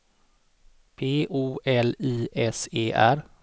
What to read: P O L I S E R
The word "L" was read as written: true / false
true